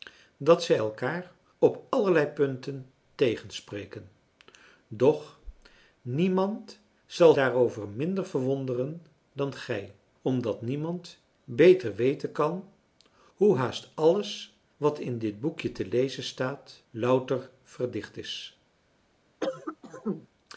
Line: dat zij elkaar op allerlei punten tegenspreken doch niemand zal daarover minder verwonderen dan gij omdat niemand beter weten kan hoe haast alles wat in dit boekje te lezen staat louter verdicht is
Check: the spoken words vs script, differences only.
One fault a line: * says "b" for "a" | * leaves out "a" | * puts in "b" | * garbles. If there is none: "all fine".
all fine